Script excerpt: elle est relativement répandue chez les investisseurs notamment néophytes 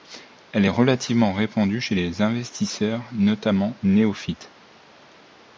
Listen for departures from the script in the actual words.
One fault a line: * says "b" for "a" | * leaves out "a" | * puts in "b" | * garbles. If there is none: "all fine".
all fine